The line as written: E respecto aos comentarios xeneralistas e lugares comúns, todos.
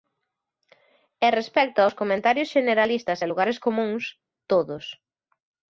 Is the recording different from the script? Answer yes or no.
no